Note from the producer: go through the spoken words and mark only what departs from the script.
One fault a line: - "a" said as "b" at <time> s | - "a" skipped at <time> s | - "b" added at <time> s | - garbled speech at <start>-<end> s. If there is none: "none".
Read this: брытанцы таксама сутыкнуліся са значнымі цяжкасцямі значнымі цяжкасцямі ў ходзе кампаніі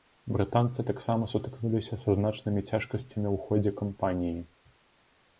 - "значнымі цяжкасцямі" skipped at 3.3 s